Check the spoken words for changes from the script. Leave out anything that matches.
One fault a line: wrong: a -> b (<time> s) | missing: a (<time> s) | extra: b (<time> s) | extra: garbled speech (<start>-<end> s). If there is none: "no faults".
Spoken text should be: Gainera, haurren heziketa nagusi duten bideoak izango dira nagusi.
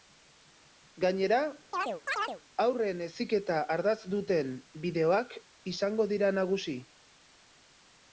wrong: nagusi -> ardatz (3.8 s)